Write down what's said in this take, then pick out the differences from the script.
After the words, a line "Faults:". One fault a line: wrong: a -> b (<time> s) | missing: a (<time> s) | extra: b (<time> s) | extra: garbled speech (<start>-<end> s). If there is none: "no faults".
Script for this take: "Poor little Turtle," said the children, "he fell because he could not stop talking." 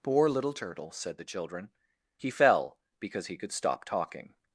"Poor little Turtle," said the children, "he fell because he could stop talking."
Faults:
missing: not (3.5 s)